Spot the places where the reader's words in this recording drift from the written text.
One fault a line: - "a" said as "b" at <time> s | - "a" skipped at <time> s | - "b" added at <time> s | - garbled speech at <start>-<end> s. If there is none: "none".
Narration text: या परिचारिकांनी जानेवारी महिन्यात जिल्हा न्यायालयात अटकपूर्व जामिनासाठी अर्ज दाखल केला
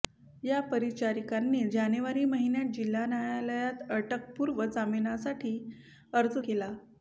- "दाखल" skipped at 6.4 s